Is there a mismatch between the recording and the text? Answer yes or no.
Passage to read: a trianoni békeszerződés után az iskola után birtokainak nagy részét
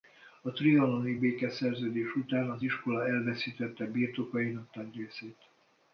yes